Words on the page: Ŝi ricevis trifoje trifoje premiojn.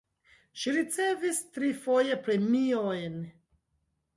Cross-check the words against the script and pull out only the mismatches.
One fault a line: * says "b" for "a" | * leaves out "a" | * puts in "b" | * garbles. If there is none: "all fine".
* leaves out "trifoje"